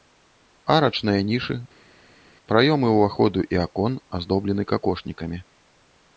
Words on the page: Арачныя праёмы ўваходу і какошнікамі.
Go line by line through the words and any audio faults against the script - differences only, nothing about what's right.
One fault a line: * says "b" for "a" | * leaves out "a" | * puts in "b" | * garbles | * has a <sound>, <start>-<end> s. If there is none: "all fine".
* puts in "нішы"
* puts in "акон аздоблены"